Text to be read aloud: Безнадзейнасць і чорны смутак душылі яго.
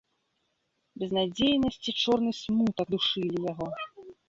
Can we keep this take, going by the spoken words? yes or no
yes